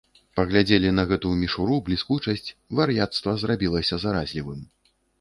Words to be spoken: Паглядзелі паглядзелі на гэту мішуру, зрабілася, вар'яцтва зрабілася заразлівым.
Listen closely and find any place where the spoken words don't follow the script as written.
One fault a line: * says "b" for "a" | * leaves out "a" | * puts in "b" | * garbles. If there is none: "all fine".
* leaves out "паглядзелі"
* says "бліскучасць" for "зрабілася"